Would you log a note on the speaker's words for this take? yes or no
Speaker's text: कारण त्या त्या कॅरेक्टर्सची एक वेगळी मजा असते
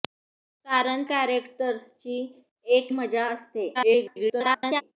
yes